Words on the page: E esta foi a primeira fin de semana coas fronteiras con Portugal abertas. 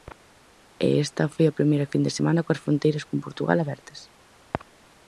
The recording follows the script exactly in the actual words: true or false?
true